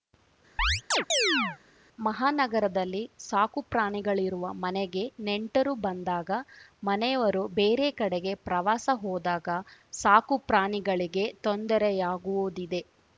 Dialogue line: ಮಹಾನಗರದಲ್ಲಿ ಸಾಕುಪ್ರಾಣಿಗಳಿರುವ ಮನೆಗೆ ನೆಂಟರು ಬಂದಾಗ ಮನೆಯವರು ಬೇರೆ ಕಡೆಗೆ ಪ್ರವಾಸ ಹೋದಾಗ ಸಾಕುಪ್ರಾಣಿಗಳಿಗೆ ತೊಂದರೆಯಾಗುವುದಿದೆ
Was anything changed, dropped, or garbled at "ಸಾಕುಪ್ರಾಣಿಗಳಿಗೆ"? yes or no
no